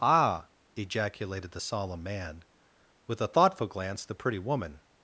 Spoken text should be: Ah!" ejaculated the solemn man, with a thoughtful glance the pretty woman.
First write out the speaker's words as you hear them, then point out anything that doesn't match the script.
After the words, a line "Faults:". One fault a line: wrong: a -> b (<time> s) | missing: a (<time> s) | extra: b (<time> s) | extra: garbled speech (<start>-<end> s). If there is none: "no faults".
Ah!" ejaculated the solemn man, with a thoughtful glance the pretty woman.
Faults:
no faults